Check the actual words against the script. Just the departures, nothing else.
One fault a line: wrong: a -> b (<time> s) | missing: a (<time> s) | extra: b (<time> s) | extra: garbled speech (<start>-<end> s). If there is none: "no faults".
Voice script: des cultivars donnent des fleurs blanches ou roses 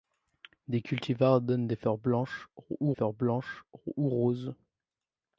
extra: fleurs blanches ou (2.9 s)